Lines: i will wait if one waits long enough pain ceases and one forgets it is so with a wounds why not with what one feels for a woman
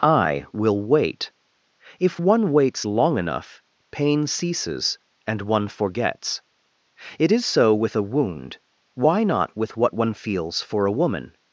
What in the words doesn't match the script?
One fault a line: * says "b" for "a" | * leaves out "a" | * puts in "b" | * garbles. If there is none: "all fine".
* says "wound" for "wounds"